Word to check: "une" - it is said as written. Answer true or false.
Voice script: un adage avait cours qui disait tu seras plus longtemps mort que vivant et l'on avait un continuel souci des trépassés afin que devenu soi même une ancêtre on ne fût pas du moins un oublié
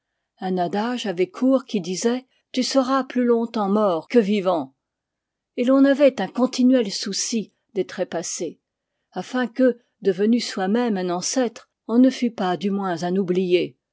false